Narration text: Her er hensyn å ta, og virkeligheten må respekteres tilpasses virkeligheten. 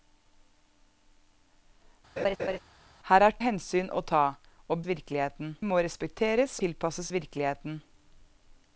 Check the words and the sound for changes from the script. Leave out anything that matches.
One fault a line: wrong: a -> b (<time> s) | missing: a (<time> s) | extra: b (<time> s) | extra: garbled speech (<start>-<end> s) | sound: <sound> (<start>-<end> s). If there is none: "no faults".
sound: laugh (2.2-2.6 s)